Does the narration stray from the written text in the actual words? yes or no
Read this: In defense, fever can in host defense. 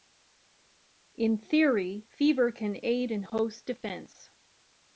yes